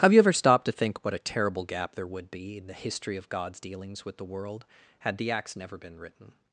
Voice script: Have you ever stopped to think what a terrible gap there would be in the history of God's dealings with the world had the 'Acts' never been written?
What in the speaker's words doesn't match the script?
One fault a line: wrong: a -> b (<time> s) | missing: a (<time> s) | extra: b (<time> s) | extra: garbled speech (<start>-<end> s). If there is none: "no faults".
no faults